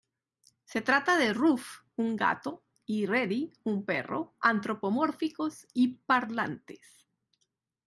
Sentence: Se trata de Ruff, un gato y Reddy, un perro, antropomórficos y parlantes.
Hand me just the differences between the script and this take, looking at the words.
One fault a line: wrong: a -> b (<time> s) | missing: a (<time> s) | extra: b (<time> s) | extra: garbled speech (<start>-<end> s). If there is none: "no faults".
no faults